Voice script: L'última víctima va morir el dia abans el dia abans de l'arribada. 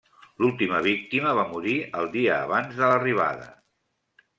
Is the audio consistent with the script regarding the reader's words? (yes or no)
no